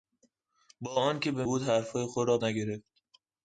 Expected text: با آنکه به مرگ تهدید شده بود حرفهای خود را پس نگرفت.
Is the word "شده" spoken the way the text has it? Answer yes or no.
no